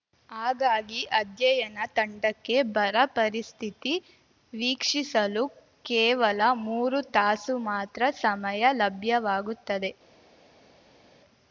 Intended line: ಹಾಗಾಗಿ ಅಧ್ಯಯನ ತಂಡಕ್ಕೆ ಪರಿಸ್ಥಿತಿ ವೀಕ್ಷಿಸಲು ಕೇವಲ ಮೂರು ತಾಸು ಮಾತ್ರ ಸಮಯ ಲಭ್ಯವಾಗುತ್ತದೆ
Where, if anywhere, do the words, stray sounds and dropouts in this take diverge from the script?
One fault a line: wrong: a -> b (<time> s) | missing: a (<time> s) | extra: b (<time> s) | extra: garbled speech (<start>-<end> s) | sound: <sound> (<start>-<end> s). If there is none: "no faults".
extra: ಬರ (2.7 s)